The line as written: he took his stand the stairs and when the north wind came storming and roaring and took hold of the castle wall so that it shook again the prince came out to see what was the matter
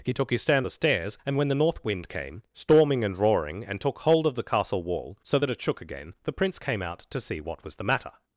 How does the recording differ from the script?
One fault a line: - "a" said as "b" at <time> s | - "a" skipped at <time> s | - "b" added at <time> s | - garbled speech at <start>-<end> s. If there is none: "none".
none